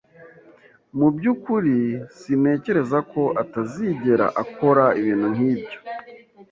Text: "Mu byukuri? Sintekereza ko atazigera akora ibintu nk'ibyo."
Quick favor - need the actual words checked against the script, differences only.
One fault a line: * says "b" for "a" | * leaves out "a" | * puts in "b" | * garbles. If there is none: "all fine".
all fine